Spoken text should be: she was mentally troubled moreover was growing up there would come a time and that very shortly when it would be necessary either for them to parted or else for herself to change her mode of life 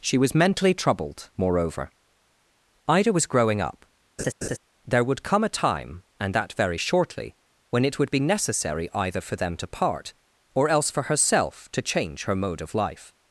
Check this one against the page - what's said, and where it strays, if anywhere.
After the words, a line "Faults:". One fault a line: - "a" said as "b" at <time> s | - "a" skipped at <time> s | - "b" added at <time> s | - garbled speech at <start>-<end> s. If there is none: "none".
she was mentally troubled moreover ida was growing up there would come a time and that very shortly when it would be necessary either for them to part or else for herself to change her mode of life
Faults:
- "ida" added at 2.9 s
- "parted" said as "part" at 9.7 s